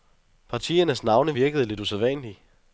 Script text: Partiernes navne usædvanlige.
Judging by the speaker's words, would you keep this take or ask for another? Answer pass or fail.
fail